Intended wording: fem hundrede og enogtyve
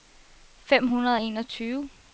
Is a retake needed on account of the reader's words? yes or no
no